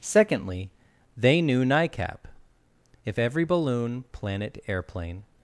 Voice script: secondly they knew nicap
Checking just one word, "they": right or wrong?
right